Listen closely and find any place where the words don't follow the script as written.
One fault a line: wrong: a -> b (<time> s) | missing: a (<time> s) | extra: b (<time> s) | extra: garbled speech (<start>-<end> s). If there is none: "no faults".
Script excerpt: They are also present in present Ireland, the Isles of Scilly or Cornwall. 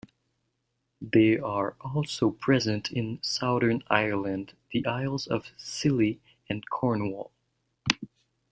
wrong: present -> southern (3.2 s)
wrong: or -> and (6.5 s)